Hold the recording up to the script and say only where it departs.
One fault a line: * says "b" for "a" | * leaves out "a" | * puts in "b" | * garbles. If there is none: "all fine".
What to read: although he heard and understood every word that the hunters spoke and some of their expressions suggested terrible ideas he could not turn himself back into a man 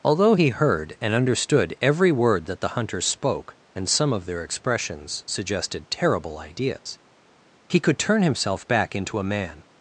* leaves out "not"